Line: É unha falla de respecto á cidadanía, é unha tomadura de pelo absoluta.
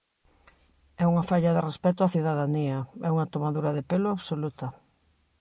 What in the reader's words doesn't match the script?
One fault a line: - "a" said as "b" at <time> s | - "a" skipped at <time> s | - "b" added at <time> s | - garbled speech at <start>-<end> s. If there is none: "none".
none